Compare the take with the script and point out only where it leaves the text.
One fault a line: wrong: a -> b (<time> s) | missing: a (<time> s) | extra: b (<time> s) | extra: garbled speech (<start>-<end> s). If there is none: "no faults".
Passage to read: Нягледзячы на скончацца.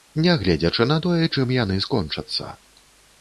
extra: тое чым яны (1.1 s)